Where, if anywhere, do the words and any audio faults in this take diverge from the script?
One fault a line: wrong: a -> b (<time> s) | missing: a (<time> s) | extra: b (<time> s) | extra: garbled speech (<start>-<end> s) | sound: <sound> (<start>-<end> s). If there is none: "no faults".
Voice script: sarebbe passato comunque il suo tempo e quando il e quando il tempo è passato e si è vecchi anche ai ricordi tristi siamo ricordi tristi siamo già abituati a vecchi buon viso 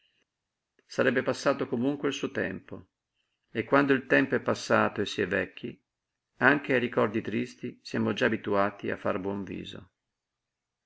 missing: e quando il (4.1 s)
missing: ricordi tristi siamo (8.1 s)
wrong: vecchi -> far (9.0 s)